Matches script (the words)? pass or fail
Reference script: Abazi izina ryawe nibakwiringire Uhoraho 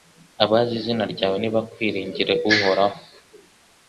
pass